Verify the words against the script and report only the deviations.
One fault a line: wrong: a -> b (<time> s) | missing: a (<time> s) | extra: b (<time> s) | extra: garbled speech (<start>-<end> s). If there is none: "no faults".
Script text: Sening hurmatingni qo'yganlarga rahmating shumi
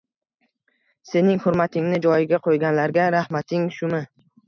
extra: joyiga (2.1 s)